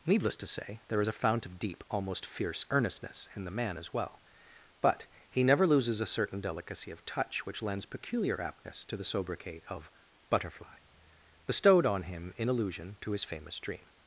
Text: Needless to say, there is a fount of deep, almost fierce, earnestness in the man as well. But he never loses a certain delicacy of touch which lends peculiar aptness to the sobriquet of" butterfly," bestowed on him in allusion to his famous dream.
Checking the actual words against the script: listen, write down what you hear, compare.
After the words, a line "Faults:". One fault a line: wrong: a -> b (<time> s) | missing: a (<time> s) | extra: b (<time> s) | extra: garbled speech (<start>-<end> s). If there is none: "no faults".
Needless to say, there is a fount of deep, almost fierce, earnestness in the man as well. But he never loses a certain delicacy of touch which lends peculiar aptness to the sobriquet of" butterfly," bestowed on him in allusion to his famous dream.
Faults:
no faults